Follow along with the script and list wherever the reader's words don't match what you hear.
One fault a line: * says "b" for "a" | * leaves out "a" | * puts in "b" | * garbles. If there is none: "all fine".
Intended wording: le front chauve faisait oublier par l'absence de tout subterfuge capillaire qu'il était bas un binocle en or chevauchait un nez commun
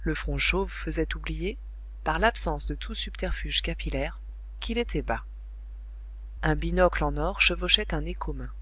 all fine